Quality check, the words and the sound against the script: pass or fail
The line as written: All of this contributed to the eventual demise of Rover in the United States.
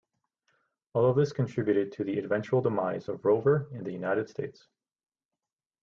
pass